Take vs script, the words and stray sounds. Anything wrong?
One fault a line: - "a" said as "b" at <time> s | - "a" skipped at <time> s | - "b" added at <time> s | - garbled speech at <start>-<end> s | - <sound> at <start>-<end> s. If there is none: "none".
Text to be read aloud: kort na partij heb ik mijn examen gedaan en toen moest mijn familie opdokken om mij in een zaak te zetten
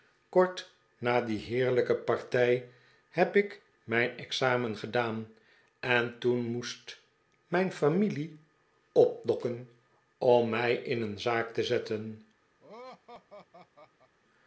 - "die heerlijke" added at 1.2 s
- laugh at 12.6-14.1 s